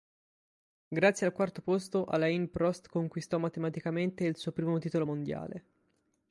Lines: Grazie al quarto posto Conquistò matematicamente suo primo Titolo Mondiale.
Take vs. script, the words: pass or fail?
fail